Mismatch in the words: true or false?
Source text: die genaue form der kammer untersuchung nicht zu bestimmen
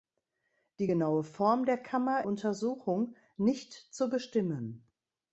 false